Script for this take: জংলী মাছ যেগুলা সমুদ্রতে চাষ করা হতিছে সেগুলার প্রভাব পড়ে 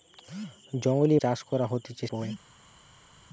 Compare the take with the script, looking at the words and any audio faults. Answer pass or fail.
fail